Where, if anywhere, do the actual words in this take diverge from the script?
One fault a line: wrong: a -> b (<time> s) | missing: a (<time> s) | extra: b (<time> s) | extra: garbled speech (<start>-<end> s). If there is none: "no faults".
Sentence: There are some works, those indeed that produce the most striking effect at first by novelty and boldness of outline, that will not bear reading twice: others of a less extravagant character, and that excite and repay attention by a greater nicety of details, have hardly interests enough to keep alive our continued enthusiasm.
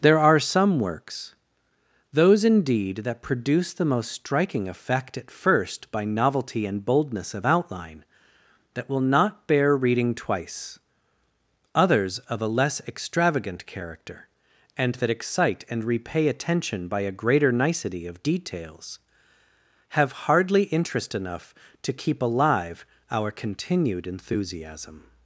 wrong: interests -> interest (20.7 s)